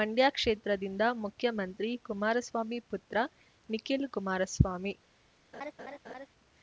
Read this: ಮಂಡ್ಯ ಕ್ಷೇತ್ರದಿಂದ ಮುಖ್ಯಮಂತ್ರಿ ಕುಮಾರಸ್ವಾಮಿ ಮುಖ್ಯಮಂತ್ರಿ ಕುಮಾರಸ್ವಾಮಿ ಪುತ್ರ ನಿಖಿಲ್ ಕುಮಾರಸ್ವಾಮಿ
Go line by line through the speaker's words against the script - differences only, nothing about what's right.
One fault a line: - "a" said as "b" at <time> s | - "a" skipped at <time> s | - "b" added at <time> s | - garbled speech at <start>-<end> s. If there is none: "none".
- "ಮುಖ್ಯಮಂತ್ರಿ ಕುಮಾರಸ್ವಾಮಿ" skipped at 2.8 s